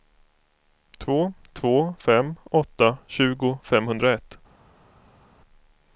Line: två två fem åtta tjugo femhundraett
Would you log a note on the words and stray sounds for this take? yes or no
no